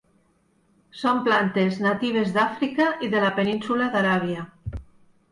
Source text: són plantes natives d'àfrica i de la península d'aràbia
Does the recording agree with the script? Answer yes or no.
yes